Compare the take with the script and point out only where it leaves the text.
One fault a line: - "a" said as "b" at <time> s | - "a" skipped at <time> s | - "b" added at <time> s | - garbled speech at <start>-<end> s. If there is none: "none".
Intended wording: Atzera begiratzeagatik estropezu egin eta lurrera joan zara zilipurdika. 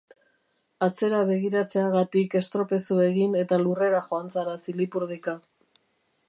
none